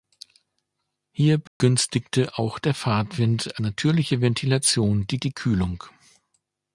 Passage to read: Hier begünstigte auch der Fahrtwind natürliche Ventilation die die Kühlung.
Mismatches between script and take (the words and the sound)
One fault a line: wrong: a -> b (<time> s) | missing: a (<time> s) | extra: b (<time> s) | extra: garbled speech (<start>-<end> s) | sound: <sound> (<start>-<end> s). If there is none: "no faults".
sound: dropout (1.5-1.6 s)